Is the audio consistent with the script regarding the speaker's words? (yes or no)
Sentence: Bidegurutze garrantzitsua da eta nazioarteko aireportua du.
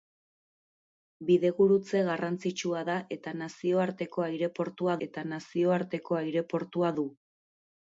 no